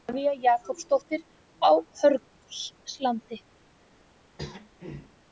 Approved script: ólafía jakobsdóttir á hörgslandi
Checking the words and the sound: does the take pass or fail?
fail